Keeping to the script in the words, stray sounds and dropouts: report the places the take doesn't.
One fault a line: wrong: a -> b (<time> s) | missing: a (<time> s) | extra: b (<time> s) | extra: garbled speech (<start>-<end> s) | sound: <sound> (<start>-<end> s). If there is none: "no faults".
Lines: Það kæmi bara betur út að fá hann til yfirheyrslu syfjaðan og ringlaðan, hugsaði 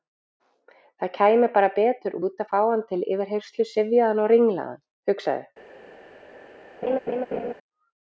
sound: laugh (6.8-7.5 s)